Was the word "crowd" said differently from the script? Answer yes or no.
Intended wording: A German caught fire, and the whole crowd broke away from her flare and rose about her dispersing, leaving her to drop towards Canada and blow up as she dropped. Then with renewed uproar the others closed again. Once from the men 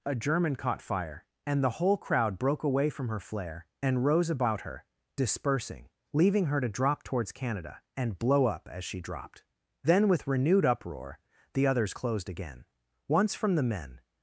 no